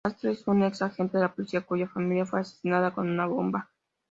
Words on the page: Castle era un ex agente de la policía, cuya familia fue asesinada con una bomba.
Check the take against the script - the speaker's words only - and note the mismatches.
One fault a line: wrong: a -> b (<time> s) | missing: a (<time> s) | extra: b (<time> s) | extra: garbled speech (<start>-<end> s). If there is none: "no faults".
wrong: era -> es (0.3 s)